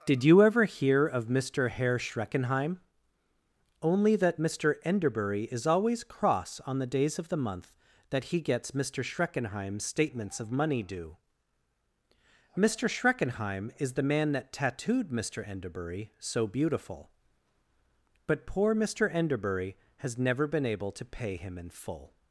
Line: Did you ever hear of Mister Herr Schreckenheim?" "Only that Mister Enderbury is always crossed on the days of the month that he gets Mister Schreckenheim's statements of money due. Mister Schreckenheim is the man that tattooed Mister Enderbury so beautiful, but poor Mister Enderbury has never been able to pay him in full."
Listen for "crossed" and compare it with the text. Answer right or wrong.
wrong